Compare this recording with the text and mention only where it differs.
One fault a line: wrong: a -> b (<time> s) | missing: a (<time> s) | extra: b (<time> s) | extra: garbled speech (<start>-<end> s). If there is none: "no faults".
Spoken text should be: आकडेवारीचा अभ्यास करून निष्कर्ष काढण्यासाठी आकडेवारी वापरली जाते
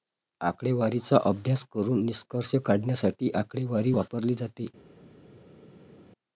no faults